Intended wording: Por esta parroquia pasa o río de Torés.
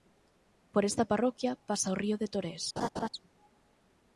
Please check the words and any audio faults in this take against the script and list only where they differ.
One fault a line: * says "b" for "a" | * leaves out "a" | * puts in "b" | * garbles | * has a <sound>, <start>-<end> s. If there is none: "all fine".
* has a laugh, 2.8-3.1 s